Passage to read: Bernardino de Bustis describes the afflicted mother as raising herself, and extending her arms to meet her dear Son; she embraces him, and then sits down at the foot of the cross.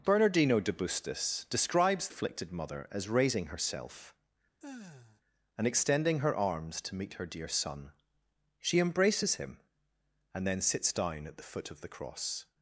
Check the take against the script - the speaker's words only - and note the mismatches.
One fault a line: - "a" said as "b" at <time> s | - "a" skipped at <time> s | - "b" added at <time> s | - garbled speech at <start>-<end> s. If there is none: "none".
- "the" skipped at 2.1 s